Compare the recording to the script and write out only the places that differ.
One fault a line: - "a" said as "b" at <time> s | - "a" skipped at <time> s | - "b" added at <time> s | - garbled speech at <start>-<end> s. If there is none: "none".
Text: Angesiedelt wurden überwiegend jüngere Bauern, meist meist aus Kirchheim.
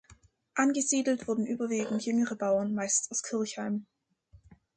- "meist" skipped at 3.1 s